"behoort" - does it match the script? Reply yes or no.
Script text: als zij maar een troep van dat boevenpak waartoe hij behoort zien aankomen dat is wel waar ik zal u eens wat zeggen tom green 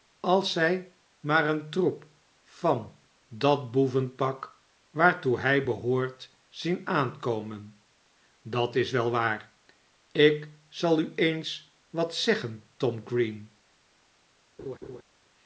yes